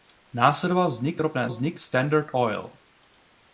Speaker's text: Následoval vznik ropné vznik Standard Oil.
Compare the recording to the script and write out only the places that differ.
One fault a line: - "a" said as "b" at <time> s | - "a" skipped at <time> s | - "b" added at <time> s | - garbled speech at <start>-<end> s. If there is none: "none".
none